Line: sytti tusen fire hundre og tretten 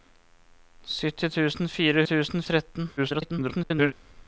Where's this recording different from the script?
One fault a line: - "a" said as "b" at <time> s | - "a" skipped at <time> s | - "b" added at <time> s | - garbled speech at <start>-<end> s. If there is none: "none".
- "hundre" said as "tusen" at 2.1 s
- garbled speech at 3.0-3.9 s